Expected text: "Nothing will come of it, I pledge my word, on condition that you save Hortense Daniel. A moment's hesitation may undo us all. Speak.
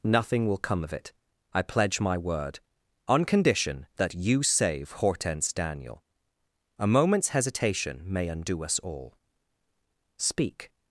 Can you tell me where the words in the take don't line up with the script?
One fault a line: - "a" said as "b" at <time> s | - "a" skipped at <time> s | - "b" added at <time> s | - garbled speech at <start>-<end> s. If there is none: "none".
none